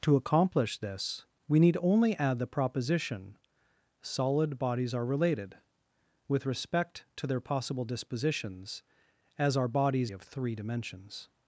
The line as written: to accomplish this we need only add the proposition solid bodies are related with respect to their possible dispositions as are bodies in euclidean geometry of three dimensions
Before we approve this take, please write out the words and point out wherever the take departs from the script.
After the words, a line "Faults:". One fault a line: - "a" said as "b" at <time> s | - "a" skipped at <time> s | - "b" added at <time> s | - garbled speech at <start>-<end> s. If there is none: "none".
to accomplish this we need only add the proposition solid bodies are related with respect to their possible dispositions as are bodies of three dimensions
Faults:
- "in euclidean geometry" skipped at 10.1 s